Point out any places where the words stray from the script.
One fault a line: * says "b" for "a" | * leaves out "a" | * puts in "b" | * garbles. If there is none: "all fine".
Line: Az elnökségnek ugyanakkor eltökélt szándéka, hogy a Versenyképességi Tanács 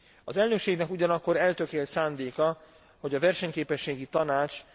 all fine